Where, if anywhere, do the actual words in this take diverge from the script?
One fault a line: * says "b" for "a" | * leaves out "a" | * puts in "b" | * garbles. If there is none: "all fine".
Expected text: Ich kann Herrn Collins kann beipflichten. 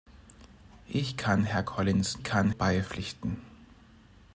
all fine